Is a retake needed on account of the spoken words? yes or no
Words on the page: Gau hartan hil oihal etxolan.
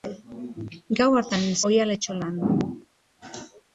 no